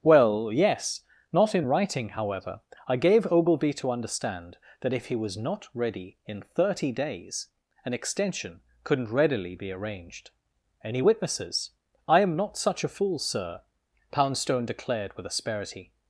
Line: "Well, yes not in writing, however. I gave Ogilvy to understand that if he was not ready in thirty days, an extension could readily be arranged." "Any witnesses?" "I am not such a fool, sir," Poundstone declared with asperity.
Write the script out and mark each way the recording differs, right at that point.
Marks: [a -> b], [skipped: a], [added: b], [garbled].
"Well, yes not in writing, however. I gave Ogilvy to understand that if he was not ready in thirty days, an extension [could -> couldn't] readily be arranged." "Any witnesses?" "I am not such a fool, sir," Poundstone declared with asperity.